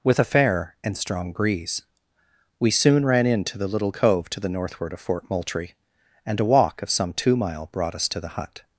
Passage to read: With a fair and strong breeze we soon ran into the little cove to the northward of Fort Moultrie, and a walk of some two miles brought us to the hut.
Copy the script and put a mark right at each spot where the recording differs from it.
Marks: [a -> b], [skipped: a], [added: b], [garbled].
With a fair and strong breeze we soon ran into the little cove to the northward of Fort Moultrie, and a walk of some two [miles -> mile] brought us to the hut.